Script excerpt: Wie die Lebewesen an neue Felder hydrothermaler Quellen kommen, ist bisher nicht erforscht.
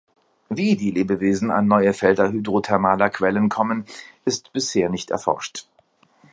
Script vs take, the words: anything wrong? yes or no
no